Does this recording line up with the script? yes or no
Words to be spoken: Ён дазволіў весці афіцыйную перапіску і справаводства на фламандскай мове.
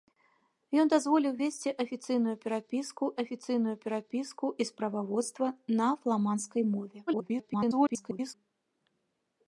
no